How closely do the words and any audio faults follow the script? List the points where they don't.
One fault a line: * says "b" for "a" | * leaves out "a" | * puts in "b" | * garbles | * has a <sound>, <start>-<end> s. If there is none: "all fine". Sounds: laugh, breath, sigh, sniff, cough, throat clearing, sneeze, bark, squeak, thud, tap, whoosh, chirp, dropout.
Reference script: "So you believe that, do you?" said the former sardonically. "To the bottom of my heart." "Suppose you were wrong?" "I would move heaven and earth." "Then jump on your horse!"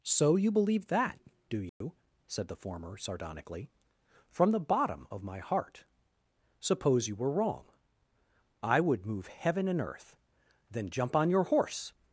* has a dropout, 1.7-1.8 s
* says "From" for "To"